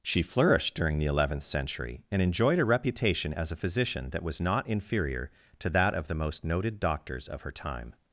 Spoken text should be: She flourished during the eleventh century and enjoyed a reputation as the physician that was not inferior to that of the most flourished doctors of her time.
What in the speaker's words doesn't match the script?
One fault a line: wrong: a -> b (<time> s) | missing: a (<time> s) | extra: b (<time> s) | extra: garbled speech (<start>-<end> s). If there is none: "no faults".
wrong: the -> a (3.5 s)
wrong: flourished -> noted (6.4 s)